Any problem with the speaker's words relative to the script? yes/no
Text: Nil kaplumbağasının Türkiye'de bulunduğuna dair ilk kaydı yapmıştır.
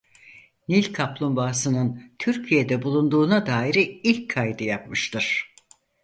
no